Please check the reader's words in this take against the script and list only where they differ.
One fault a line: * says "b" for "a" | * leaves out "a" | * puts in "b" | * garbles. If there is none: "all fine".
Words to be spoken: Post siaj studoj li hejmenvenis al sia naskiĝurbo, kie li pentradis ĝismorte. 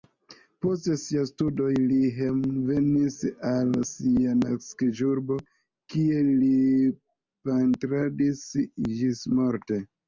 all fine